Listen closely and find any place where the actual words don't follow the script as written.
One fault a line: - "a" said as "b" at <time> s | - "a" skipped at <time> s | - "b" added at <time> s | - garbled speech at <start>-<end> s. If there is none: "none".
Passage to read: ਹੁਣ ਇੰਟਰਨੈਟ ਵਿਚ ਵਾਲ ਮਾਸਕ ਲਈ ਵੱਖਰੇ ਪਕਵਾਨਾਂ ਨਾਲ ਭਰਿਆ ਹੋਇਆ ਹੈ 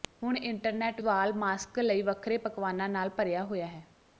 - "ਵਿਚ" skipped at 1.0 s